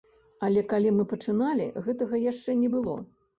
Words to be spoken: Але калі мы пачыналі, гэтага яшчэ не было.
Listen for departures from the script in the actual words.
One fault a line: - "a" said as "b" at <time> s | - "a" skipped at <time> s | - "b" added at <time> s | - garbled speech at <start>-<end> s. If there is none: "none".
none